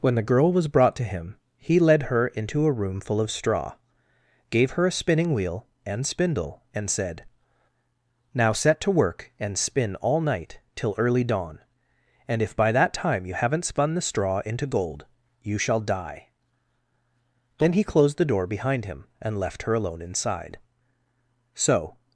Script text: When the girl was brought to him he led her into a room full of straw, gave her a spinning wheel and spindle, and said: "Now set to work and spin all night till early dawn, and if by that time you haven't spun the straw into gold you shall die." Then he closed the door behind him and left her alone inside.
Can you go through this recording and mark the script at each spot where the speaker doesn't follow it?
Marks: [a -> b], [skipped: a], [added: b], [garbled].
When the girl was brought to him he led her into a room full of straw, gave her a spinning wheel and spindle, and said: "Now set to work and spin all night till early dawn, and if by that time you haven't spun the straw into gold you shall die." Then he closed the door behind him and left her alone inside. [added: So]